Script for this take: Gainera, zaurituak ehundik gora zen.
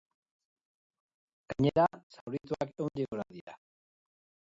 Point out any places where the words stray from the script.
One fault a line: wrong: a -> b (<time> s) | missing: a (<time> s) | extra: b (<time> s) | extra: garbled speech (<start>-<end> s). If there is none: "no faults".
wrong: zen -> dira (3.4 s)